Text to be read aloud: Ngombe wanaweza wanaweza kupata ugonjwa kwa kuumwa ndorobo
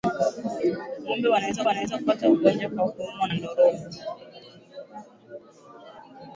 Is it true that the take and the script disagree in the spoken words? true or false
false